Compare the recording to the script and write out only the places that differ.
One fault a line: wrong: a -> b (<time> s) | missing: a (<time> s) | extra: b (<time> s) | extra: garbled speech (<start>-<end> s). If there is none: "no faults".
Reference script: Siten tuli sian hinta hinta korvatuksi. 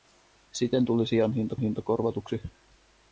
no faults